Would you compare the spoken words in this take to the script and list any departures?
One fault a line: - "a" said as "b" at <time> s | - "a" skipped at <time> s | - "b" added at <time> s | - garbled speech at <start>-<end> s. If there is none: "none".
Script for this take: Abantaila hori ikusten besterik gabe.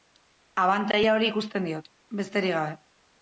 - "diot" added at 1.7 s